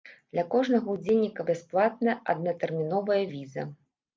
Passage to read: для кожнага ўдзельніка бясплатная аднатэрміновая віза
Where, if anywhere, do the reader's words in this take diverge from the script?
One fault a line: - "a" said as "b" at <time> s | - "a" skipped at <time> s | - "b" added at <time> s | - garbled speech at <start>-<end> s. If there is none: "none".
none